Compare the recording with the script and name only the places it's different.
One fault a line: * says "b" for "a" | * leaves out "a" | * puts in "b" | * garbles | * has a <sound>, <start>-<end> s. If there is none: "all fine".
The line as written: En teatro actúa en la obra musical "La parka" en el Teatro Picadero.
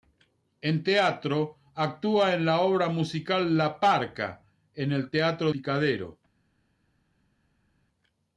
all fine